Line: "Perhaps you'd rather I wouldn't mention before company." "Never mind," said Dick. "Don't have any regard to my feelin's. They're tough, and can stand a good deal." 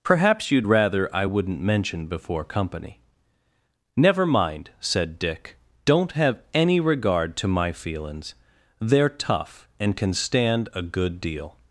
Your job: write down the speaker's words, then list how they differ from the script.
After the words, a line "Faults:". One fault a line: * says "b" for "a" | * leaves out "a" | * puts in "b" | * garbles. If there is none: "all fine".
"Perhaps you'd rather I wouldn't mention before company." "Never mind," said Dick. "Don't have any regard to my feelin's. They're tough, and can stand a good deal."
Faults:
all fine